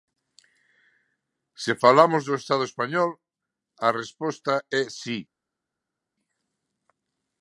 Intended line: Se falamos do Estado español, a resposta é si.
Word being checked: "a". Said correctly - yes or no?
yes